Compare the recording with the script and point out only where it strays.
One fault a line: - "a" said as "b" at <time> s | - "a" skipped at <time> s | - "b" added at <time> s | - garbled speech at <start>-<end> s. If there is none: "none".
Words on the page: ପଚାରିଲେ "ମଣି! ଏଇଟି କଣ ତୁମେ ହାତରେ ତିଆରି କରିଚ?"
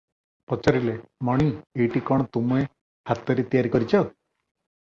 none